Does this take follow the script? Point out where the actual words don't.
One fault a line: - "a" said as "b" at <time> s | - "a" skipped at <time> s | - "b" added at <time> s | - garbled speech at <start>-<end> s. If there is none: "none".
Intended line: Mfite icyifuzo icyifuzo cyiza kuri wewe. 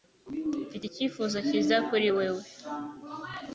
- "icyifuzo" skipped at 1.4 s